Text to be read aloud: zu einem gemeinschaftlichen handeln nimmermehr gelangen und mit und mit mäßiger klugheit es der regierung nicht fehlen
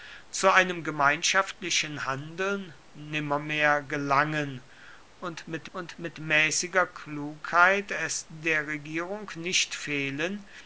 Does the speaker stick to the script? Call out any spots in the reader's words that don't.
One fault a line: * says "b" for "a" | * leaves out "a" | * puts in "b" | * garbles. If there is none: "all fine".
all fine